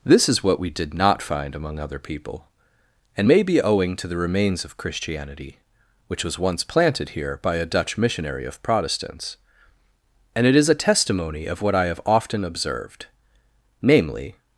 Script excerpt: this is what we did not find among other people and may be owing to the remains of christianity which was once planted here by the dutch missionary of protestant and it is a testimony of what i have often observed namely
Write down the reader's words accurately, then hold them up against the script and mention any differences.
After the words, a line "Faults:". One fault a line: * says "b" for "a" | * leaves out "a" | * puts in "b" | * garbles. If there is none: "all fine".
this is what we did not find among other people and may be owing to the remains of christianity which was once planted here by a dutch missionary of protestants and it is a testimony of what i have often observed namely
Faults:
* says "a" for "the"
* says "protestants" for "protestant"